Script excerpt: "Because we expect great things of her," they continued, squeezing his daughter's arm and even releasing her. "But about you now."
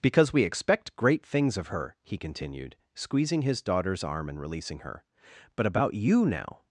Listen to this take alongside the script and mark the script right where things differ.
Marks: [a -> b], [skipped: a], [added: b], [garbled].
"Because we expect great things of her," [they -> he] continued, squeezing his daughter's arm and [skipped: even] releasing her. "But about you now."